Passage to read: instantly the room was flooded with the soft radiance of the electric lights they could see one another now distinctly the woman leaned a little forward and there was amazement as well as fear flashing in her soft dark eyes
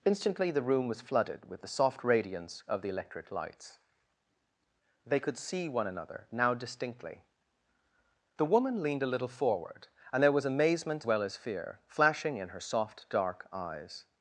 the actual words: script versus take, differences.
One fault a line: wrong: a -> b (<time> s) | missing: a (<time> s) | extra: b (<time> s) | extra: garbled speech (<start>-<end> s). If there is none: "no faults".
missing: as (11.0 s)